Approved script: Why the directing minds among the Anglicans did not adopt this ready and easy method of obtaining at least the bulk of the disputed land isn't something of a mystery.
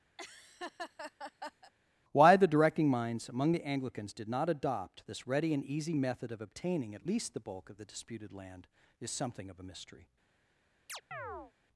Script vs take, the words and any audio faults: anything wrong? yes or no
yes